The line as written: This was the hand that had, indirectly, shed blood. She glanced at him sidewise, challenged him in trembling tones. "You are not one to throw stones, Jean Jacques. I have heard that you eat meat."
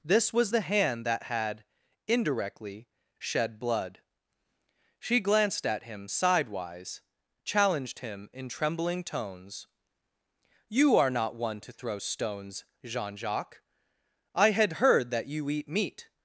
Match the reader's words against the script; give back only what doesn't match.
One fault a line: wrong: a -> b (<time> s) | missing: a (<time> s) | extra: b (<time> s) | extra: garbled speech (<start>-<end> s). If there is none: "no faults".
wrong: have -> had (14.5 s)